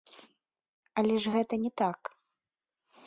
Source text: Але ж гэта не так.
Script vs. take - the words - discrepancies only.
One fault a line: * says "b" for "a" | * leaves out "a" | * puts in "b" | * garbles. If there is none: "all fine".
all fine